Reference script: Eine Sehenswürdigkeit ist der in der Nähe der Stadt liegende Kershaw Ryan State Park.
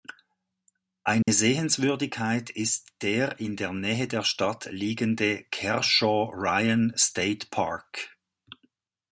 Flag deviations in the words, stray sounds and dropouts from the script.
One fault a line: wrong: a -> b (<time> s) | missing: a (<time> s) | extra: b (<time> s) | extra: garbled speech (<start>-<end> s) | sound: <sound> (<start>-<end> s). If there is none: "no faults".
sound: dropout (1.2-1.3 s)